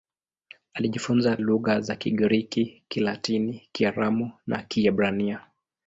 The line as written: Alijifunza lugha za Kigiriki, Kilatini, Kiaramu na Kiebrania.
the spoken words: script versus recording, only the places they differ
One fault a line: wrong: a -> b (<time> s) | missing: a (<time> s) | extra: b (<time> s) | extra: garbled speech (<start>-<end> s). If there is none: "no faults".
no faults